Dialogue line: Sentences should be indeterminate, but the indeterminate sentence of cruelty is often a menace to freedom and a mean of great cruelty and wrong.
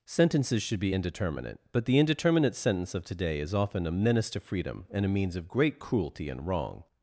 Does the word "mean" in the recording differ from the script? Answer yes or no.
yes